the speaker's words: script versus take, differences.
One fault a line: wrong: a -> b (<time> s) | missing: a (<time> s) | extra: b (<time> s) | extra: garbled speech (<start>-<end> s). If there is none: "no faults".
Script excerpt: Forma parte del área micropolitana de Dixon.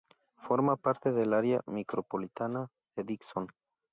no faults